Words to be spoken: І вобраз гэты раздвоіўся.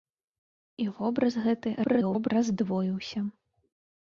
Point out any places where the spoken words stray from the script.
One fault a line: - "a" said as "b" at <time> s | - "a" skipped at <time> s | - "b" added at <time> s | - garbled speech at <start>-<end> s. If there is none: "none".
- garbled speech at 1.8-2.3 s